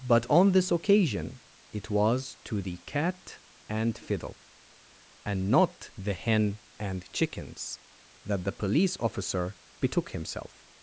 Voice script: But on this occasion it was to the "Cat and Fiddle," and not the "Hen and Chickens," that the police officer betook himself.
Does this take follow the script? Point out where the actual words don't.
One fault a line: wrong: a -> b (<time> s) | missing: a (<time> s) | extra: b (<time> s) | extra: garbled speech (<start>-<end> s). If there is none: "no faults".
no faults